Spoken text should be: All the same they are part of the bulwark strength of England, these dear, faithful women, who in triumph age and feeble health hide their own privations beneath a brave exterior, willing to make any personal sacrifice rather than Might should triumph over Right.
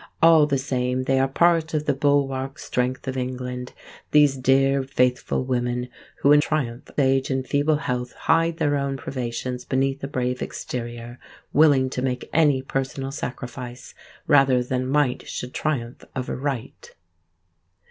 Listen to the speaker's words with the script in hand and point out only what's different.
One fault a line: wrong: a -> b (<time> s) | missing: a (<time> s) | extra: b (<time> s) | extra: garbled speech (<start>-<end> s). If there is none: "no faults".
no faults